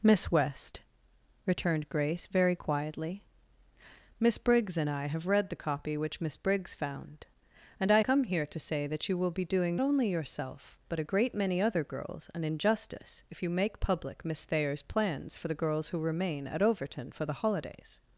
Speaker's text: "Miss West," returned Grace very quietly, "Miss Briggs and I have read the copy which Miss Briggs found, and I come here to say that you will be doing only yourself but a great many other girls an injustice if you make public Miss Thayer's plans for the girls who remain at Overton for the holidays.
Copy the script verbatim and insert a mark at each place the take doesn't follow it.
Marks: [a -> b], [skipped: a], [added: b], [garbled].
"Miss West," returned Grace very quietly, "Miss Briggs and I have read the copy which Miss Briggs found, and I come here to say that you will be doing only yourself but a great many other girls an injustice if you make public Miss Thayer's plans for the girls who remain at Overton for the holidays.